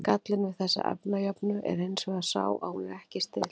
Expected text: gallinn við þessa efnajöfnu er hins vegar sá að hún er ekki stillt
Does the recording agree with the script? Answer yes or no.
yes